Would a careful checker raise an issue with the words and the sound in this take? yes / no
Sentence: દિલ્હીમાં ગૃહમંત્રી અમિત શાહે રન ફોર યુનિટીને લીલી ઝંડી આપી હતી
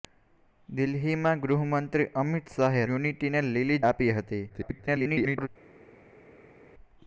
yes